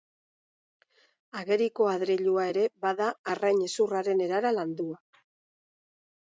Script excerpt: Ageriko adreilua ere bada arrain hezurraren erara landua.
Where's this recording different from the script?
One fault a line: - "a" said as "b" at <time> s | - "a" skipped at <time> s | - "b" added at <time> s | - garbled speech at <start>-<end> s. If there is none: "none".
none